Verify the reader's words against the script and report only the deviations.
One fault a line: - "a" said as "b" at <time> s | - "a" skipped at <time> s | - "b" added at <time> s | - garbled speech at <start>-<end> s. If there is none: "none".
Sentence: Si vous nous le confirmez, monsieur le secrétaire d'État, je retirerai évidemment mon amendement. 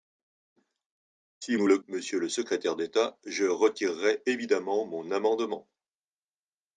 - "vous" skipped at 1.6 s
- "confirmez" skipped at 1.8 s